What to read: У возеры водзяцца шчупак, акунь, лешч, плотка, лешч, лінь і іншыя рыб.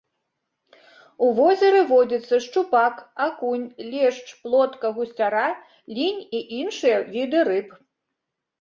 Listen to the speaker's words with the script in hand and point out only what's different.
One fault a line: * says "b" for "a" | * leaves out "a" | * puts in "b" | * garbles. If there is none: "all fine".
* says "гусцяра" for "лешч"
* puts in "віды"